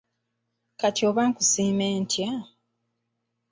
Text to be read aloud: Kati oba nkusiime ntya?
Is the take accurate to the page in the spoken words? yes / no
yes